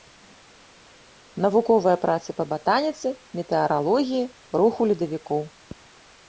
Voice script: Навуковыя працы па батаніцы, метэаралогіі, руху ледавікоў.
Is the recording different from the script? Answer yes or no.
no